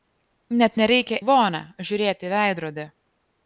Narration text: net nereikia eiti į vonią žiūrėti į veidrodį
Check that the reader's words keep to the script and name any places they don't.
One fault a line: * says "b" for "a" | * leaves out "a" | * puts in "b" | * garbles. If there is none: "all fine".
* leaves out "eiti"